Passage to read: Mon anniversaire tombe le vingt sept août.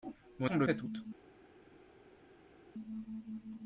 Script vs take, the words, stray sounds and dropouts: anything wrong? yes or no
yes